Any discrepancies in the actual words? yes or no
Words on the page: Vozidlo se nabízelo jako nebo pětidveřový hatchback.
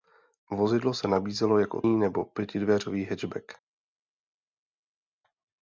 no